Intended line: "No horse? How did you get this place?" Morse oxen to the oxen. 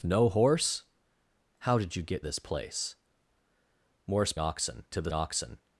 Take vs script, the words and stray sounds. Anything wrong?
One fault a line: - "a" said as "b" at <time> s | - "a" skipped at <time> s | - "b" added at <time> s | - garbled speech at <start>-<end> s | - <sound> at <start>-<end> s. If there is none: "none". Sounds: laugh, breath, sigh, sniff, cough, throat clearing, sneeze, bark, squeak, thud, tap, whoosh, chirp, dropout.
none